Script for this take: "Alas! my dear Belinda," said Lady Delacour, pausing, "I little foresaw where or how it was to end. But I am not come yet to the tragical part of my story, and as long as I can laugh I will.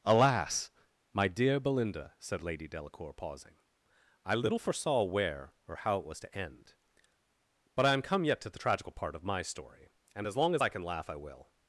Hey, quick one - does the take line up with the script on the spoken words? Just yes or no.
no